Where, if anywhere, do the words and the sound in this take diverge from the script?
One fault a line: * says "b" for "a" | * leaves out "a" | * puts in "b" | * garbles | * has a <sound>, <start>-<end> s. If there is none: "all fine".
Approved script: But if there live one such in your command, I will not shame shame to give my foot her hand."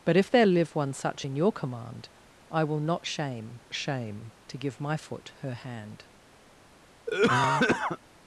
* has a cough, 7.1-8.0 s